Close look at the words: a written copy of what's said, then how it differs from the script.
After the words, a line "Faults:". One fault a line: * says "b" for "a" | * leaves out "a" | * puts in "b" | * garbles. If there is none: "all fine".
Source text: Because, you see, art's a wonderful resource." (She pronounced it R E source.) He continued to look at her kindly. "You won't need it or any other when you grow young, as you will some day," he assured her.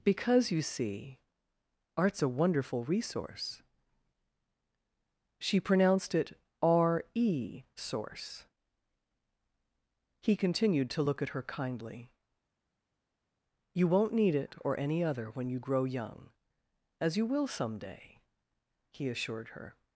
Because, you see, art's a wonderful resource." (She pronounced it R E source.) He continued to look at her kindly. "You won't need it or any other when you grow young, as you will some day," he assured her.
Faults:
all fine